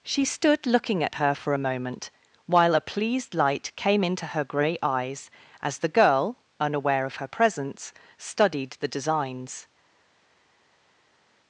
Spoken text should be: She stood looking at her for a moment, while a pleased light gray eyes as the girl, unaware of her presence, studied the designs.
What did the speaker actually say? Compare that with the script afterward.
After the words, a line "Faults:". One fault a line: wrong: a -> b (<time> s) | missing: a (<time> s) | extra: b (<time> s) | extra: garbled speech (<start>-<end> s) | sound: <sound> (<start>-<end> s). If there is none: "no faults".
She stood looking at her for a moment, while a pleased light came into her gray eyes as the girl, unaware of her presence, studied the designs.
Faults:
extra: came into her (3.8 s)